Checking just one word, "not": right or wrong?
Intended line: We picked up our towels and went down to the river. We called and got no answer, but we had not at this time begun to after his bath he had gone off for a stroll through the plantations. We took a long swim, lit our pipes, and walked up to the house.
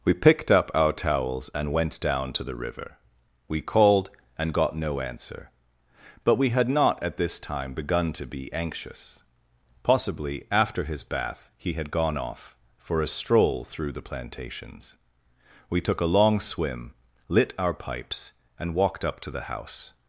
right